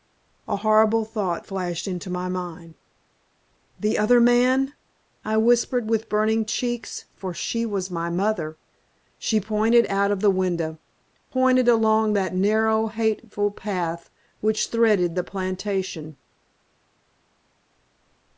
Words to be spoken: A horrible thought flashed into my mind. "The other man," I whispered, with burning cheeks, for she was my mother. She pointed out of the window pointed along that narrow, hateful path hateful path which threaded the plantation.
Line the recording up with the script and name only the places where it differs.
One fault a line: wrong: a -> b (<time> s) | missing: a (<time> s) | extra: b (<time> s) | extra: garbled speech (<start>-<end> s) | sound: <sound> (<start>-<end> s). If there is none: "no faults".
missing: hateful path (14.1 s)